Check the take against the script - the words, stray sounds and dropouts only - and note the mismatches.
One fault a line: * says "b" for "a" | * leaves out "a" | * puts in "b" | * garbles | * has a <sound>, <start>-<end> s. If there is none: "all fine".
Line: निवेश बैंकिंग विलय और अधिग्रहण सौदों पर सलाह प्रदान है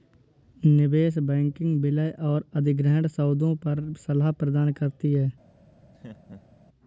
* puts in "करती"
* has a laugh, 5.9-6.6 s